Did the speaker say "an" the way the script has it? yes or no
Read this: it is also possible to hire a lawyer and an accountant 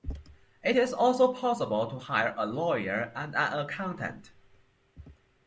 yes